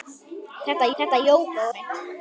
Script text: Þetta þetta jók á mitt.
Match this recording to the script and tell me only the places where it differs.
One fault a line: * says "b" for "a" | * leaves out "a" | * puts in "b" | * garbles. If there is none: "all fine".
all fine